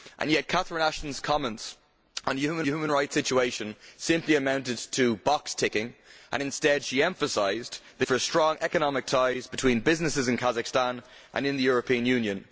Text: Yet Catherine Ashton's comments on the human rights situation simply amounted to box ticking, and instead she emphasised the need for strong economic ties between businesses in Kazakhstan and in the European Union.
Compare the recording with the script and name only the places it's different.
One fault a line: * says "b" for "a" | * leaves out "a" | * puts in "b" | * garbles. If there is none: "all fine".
* puts in "human"
* leaves out "need"